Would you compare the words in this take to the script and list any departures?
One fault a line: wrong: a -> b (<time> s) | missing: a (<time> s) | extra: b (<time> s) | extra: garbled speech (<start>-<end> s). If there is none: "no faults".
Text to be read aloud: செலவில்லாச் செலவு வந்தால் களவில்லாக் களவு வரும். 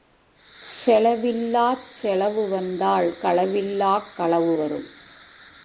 no faults